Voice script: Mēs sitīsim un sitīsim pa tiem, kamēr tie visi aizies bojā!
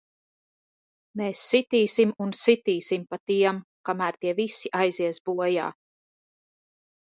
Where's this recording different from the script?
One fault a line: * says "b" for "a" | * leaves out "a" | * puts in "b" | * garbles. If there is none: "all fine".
all fine